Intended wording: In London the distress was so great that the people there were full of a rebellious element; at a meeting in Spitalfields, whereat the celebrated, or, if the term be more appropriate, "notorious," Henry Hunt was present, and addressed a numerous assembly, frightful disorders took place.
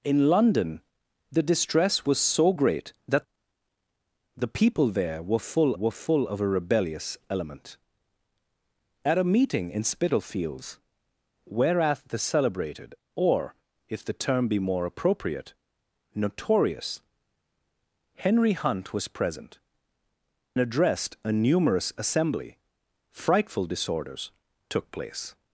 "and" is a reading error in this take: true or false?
true